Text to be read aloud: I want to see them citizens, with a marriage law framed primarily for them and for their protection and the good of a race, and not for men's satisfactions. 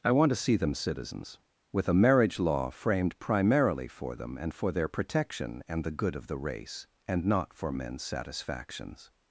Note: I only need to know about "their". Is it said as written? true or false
true